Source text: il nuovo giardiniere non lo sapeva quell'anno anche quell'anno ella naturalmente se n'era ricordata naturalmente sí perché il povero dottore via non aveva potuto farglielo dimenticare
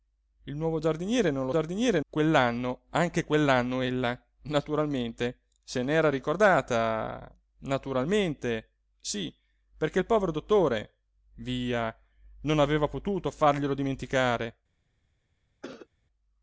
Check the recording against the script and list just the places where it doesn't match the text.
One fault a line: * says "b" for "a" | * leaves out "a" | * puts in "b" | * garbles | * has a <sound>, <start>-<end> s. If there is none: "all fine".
* says "giardiniere" for "sapeva"
* has a cough, 15.6-15.9 s